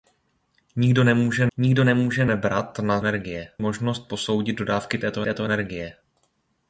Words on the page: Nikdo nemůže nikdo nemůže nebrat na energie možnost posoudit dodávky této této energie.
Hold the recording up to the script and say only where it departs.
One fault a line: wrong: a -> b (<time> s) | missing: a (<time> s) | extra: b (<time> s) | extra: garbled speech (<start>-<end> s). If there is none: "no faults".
no faults